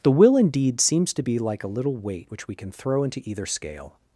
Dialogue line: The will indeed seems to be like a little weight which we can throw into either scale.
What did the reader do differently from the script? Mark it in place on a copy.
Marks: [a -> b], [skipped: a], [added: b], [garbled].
The will indeed seems to be like a little weight which we can throw into either scale.